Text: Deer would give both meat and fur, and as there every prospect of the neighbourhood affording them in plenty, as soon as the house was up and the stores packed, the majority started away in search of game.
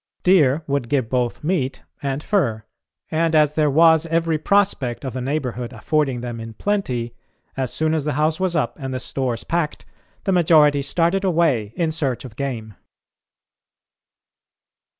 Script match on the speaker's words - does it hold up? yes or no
no